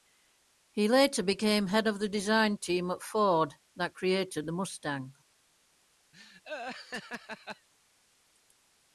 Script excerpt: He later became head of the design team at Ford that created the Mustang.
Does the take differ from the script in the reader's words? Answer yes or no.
no